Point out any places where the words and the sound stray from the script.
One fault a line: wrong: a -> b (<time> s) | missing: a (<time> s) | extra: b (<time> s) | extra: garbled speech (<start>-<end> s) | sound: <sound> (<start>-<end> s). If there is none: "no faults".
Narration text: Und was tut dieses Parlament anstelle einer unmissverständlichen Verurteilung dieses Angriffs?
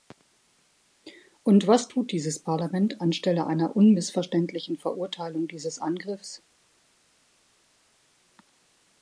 no faults